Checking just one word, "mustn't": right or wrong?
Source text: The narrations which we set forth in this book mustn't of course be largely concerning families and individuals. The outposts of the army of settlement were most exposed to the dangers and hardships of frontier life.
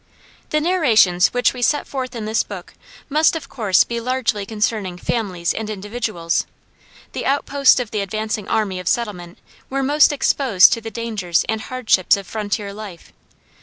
wrong